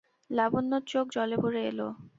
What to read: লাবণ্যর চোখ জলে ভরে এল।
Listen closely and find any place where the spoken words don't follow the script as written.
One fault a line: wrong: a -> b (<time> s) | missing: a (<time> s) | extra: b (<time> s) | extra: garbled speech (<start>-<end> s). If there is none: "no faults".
no faults